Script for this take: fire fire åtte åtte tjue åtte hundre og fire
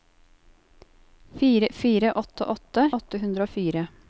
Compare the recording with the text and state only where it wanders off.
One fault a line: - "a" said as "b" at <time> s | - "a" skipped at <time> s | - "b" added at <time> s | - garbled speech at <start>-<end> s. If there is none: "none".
- "tjue" skipped at 2.9 s